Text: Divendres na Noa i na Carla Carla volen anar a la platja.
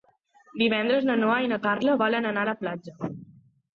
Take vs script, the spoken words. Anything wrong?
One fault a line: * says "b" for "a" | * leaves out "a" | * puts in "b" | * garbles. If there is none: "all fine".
* leaves out "Carla"